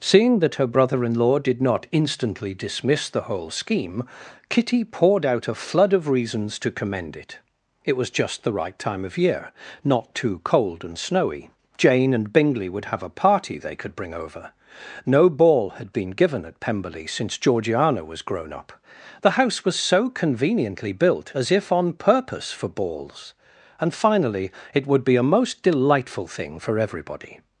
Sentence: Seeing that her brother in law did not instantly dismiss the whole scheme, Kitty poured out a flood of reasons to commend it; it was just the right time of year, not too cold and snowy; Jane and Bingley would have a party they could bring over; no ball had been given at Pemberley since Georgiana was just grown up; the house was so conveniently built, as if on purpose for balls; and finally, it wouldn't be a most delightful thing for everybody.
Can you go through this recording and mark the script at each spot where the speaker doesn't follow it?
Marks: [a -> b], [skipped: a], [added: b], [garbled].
Seeing that her brother in law did not instantly dismiss the whole scheme, Kitty poured out a flood of reasons to commend it; it was just the right time of year, not too cold and snowy; Jane and Bingley would have a party they could bring over; no ball had been given at Pemberley since Georgiana was [skipped: just] grown up; the house was so conveniently built, as if on purpose for balls; and finally, it [wouldn't -> would] be a most delightful thing for everybody.